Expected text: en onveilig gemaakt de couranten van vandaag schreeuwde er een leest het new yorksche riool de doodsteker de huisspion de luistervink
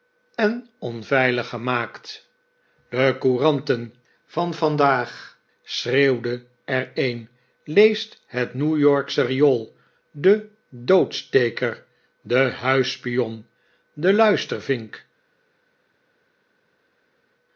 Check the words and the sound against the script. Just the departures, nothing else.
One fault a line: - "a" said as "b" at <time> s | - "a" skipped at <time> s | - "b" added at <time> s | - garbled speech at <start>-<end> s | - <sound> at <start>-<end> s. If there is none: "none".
none